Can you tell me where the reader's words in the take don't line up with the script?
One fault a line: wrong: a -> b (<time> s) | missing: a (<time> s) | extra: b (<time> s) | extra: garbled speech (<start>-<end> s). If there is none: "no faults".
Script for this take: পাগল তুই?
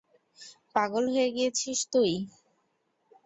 extra: হয়ে গিয়েছিস (1.1 s)